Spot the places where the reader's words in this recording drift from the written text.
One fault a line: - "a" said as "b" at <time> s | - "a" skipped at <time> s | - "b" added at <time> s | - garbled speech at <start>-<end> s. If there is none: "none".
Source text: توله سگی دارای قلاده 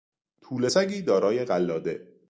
none